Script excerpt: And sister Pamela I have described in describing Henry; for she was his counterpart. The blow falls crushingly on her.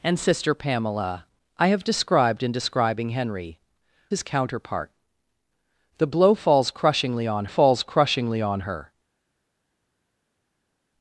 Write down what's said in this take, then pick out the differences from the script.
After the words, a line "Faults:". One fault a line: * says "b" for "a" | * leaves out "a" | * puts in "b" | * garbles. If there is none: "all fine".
And sister Pamela I have described in describing Henry; his counterpart. The blow falls crushingly on falls crushingly on her.
Faults:
* leaves out "for she was"
* puts in "falls crushingly on"